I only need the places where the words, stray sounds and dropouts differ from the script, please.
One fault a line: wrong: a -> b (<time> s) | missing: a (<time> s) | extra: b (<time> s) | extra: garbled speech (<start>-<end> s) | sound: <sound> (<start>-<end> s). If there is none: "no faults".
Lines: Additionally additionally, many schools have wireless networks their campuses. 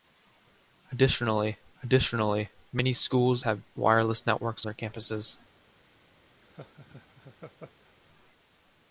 sound: laugh (6.4-7.9 s)